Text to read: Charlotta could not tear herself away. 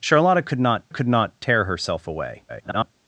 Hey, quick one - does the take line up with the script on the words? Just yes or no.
no